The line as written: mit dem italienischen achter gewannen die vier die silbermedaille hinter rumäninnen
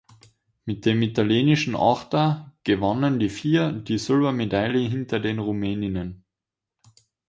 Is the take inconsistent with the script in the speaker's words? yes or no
yes